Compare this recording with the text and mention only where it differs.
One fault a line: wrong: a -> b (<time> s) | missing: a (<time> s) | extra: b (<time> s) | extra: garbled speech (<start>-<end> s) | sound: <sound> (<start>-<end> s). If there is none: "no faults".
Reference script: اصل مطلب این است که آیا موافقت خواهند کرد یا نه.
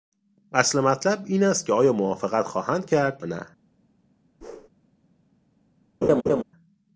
missing: یا (3.2 s)
sound: whoosh (4.4-4.7 s)
sound: laugh (6.0-6.4 s)